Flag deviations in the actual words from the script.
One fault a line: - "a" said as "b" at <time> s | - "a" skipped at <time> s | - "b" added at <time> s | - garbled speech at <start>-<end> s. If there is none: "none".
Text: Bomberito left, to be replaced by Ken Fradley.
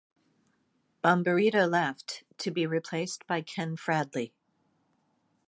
none